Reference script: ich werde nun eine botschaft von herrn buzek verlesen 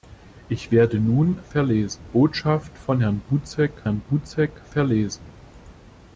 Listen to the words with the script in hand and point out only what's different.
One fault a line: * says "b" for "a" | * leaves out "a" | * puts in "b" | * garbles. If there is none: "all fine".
* says "verlesen" for "eine"
* puts in "herrn buzek"